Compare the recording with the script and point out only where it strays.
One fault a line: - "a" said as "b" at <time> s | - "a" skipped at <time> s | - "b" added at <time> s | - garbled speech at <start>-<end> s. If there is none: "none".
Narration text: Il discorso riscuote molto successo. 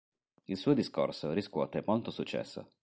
- "suo" added at 0.6 s